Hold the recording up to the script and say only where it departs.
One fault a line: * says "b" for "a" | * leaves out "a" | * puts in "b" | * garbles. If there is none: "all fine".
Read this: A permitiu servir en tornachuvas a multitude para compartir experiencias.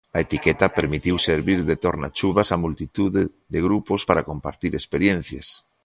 * puts in "etiqueta"
* says "de" for "en"
* puts in "de grupos"